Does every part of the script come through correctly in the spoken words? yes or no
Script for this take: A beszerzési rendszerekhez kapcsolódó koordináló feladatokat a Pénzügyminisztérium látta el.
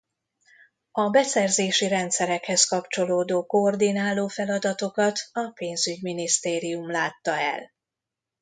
yes